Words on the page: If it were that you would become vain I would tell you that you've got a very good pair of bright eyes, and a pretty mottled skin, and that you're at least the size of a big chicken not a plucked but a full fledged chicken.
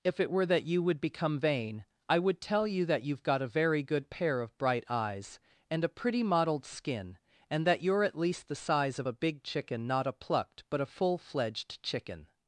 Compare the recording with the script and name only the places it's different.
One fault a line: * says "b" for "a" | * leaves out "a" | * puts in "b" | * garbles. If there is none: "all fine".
all fine